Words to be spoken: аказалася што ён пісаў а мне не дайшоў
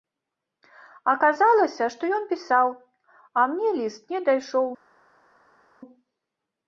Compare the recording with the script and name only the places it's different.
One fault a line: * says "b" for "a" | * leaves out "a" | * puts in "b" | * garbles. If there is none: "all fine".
* puts in "ліст"